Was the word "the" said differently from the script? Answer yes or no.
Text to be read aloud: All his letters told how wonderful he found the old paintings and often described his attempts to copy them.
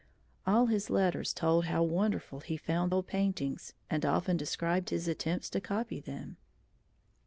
yes